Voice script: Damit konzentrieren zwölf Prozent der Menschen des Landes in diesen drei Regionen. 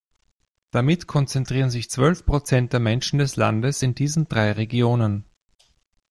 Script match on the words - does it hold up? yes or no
no